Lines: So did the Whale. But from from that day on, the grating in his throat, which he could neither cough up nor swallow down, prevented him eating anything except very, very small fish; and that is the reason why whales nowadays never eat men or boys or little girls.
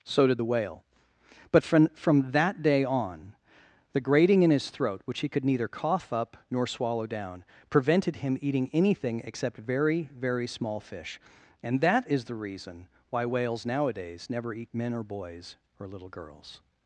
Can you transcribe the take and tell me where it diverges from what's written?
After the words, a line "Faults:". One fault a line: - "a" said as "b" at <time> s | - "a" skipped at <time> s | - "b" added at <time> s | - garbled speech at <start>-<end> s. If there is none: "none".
So did the Whale. But from from that day on, the grating in his throat, which he could neither cough up nor swallow down, prevented him eating anything except very, very small fish; and that is the reason why whales nowadays never eat men or boys or little girls.
Faults:
none